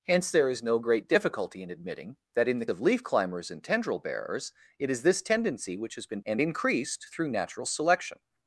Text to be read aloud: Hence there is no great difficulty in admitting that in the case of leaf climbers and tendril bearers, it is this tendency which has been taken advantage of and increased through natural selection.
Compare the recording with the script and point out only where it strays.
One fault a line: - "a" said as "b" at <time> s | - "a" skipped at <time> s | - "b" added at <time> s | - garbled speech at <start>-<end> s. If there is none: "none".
- "case" skipped at 2.6 s
- "taken advantage of" skipped at 6.2 s